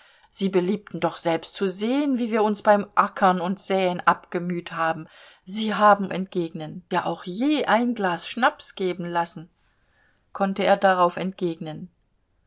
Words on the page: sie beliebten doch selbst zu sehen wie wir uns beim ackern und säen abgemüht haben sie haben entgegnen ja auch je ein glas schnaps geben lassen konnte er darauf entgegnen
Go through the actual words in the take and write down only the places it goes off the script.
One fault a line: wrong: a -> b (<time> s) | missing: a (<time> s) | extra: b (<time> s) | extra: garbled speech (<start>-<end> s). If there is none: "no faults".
no faults